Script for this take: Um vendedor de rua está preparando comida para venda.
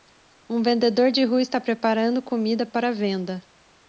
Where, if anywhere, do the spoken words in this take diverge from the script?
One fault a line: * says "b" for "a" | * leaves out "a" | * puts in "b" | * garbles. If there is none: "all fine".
all fine